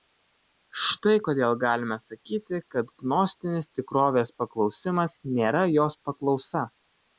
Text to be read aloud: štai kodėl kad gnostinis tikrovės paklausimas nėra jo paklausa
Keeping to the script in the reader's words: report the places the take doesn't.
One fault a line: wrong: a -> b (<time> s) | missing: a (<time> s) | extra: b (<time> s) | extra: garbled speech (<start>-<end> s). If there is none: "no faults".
extra: galime sakyti (1.6 s)
wrong: jo -> jos (5.8 s)